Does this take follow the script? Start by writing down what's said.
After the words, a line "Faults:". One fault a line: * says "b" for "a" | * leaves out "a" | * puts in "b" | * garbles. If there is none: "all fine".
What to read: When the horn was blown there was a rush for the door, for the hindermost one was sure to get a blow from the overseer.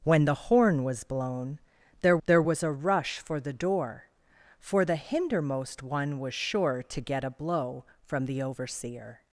When the horn was blown there there was a rush for the door, for the hindermost one was sure to get a blow from the overseer.
Faults:
* puts in "there"